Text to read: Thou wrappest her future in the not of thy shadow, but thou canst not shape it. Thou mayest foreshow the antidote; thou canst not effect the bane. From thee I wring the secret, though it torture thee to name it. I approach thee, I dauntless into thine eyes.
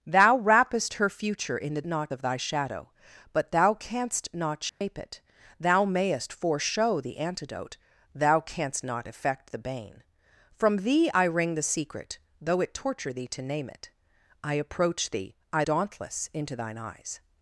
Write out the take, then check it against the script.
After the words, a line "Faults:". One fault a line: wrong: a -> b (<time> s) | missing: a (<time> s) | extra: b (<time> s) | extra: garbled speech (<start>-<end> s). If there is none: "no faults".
Thou wrappest her future in the not of thy shadow, but thou canst not shape it. Thou mayest foreshow the antidote; thou canst not effect the bane. From thee I wring the secret, though it torture thee to name it. I approach thee, I dauntless into thine eyes.
Faults:
no faults